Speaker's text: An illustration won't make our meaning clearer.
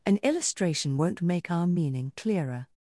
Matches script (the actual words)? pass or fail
pass